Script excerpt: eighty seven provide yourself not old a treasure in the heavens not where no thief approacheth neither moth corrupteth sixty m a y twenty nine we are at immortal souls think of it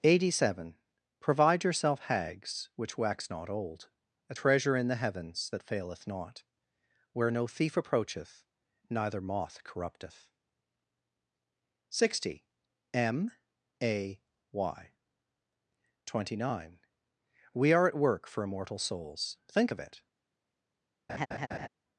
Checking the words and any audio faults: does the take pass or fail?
fail